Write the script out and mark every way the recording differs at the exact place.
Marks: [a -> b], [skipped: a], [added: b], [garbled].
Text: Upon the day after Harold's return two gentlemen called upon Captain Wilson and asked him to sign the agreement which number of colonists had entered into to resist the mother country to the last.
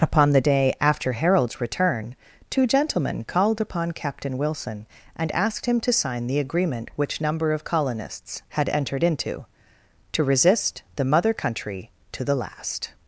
Upon the day after Harold's return two gentlemen called upon Captain Wilson and asked him to sign the agreement which number of colonists had entered into to resist the mother country to the last.